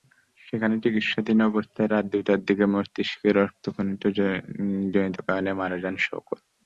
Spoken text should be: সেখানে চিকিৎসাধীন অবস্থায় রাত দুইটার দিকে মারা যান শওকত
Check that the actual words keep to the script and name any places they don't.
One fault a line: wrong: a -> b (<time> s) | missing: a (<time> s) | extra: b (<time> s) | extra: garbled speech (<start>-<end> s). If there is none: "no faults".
extra: মস্তিষ্কে রক্তক্ষরণজনিত কারণে (2.7 s)